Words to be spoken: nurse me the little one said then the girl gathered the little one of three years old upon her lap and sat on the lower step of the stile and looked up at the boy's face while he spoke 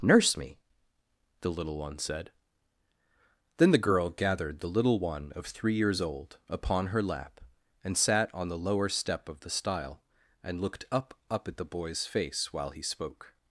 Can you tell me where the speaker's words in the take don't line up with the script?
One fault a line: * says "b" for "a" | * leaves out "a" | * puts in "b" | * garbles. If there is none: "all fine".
* puts in "up"